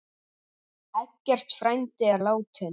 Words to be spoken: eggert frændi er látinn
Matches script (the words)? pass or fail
pass